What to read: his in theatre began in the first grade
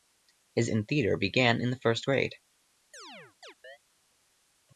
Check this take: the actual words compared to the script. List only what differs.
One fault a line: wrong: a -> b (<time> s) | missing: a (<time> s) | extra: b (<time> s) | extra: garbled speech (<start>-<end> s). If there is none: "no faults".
no faults